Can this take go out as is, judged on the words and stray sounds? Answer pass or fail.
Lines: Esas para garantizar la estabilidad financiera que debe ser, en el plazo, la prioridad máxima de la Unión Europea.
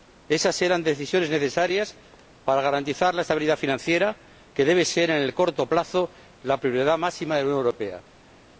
fail